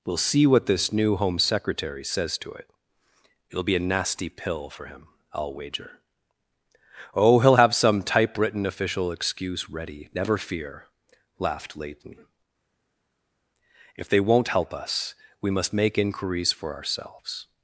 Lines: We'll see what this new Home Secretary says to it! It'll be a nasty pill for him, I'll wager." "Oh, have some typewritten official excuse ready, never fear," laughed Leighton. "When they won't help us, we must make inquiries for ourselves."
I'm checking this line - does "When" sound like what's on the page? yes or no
no